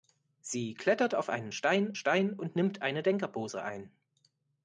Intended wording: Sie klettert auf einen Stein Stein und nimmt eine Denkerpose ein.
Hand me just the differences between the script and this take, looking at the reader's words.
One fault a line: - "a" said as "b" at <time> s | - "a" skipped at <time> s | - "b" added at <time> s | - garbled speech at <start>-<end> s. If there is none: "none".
none